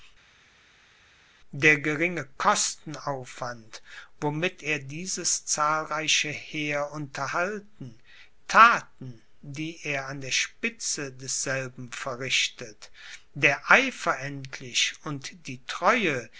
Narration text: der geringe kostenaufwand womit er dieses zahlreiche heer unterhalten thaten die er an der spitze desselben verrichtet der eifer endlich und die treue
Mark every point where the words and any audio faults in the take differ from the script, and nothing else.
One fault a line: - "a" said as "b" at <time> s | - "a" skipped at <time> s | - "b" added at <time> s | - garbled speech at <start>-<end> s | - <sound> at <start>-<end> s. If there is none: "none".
none